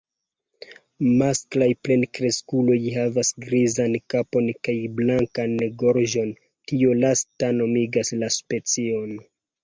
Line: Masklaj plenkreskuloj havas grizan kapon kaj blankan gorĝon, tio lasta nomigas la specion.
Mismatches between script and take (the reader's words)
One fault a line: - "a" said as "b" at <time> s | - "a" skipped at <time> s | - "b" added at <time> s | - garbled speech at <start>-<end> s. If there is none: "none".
none